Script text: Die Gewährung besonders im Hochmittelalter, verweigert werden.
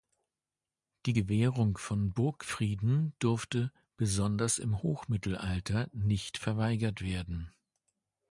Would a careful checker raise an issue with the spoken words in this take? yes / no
yes